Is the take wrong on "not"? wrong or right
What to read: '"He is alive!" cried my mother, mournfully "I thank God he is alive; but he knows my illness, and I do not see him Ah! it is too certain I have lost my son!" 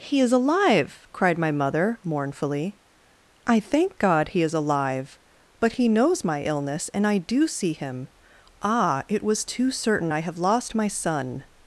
wrong